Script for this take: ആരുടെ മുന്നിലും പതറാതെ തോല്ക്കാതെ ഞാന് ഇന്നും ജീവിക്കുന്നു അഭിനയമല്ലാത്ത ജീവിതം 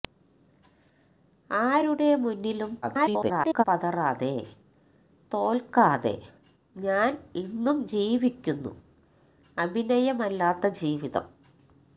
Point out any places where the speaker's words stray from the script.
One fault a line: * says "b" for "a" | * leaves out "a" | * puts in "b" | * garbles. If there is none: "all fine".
* garbles